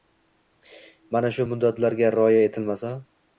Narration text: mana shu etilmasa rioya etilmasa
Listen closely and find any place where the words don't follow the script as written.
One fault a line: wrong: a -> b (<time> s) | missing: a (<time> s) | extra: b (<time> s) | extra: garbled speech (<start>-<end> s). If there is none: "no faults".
wrong: etilmasa -> muddatlarga (1.5 s)